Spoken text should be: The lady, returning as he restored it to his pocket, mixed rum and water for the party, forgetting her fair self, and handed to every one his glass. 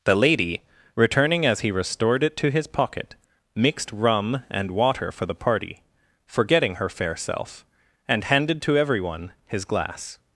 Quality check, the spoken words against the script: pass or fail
pass